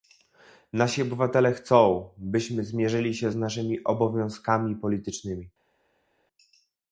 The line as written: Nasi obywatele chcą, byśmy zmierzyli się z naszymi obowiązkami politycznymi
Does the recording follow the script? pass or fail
pass